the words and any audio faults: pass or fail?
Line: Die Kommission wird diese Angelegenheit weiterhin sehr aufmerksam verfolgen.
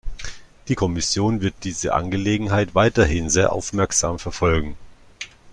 pass